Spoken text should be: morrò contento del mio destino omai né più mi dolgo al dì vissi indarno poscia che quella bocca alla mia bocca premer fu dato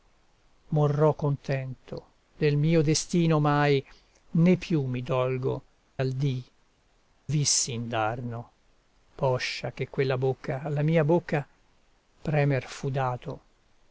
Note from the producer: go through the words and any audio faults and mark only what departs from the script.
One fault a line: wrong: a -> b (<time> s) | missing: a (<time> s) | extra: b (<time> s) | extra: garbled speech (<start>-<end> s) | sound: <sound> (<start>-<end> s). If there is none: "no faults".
no faults